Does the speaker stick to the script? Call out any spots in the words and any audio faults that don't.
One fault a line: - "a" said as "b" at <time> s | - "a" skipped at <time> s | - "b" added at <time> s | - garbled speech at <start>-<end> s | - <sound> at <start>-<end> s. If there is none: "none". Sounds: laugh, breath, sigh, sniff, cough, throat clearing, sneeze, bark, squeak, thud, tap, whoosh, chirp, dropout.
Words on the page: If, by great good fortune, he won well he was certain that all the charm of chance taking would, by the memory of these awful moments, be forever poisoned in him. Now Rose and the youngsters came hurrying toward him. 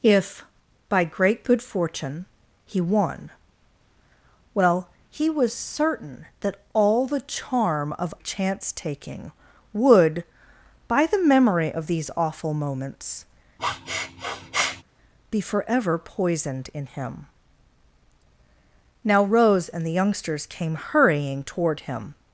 - sniff at 13.6-14.8 s